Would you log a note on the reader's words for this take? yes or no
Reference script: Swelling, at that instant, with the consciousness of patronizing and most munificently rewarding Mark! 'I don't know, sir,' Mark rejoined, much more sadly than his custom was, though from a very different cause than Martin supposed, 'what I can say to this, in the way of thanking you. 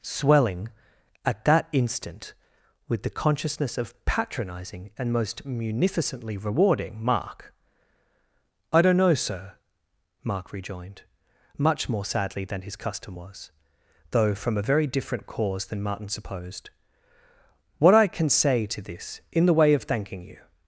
no